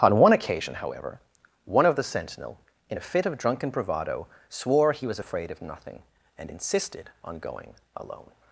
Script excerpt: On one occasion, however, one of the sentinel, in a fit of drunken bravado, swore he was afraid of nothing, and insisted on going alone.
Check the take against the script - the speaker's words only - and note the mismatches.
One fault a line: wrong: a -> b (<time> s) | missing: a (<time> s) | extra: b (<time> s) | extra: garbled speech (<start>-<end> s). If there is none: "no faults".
no faults